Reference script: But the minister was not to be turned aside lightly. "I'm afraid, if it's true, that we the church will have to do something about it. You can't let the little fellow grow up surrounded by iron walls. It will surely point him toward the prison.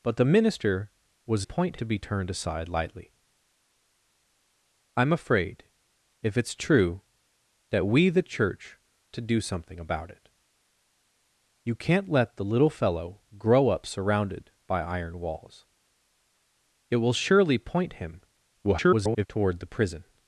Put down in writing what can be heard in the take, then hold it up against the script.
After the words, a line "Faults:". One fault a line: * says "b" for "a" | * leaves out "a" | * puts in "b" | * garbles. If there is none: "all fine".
But the minister was point to be turned aside lightly. "I'm afraid, if it's true, that we the church to do something about it. You can't let the little fellow grow up surrounded by iron walls. It will surely point him [garbled] toward the prison.
Faults:
* says "point" for "not"
* leaves out "will have"
* garbles